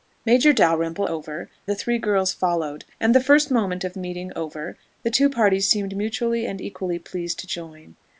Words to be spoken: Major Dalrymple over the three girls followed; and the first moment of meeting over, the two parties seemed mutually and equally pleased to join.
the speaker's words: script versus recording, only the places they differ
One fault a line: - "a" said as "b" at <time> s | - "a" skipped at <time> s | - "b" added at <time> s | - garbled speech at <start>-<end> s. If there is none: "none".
none